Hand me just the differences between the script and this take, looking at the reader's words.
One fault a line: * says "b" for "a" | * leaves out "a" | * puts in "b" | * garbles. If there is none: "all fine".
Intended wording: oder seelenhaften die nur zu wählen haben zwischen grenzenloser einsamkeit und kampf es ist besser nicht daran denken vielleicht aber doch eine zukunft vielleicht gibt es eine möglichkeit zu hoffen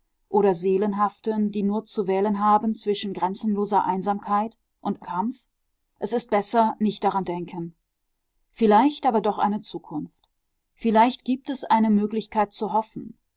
all fine